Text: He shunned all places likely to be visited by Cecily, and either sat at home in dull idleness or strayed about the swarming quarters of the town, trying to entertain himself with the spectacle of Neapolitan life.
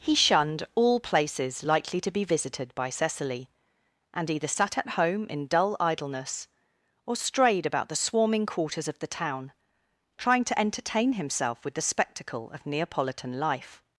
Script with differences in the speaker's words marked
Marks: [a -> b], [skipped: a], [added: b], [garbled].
He shunned all places likely to be visited by Cecily, and either sat at home in dull idleness or strayed about the swarming quarters of the town, trying to entertain himself with the spectacle of Neapolitan life.